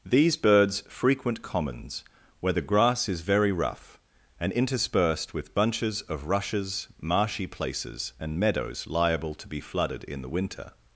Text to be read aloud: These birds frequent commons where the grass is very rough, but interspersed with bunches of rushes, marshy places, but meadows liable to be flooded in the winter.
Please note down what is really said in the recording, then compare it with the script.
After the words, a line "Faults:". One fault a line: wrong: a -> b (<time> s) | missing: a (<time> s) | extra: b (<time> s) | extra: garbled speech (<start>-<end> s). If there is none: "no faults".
These birds frequent commons where the grass is very rough, and interspersed with bunches of rushes, marshy places, and meadows liable to be flooded in the winter.
Faults:
wrong: but -> and (4.4 s)
wrong: but -> and (8.2 s)